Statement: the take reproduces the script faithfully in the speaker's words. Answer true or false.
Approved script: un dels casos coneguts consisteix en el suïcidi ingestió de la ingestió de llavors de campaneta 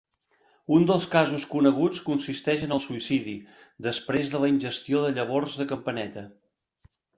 false